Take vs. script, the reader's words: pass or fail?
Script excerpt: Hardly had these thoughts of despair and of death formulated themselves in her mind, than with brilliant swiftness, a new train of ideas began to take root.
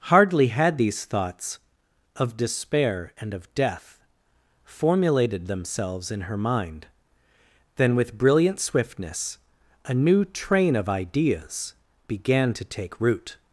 pass